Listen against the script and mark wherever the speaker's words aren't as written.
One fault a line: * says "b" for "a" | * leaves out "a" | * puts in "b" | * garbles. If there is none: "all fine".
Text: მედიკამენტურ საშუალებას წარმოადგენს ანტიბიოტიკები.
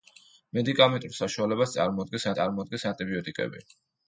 * puts in "წარმოადგენს"